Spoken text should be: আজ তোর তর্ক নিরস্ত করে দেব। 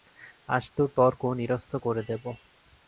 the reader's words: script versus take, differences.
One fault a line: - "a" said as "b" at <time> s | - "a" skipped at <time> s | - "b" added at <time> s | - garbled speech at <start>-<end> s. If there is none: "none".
none